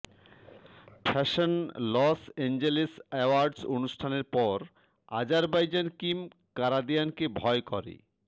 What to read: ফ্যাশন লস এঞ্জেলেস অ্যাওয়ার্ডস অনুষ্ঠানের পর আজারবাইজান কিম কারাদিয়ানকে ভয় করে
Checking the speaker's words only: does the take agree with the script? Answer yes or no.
yes